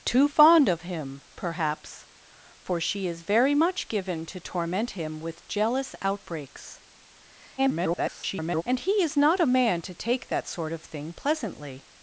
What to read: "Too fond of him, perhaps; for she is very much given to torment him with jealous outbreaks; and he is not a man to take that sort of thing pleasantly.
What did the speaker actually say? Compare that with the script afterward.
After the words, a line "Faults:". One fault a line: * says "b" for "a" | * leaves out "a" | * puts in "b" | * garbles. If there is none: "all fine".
"Too fond of him, perhaps; for she is very much given to torment him with jealous outbreaks; [garbled] and he is not a man to take that sort of thing pleasantly.
Faults:
* garbles